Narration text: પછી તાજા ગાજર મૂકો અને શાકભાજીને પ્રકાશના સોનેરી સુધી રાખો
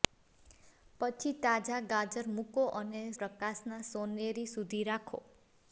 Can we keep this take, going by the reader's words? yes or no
no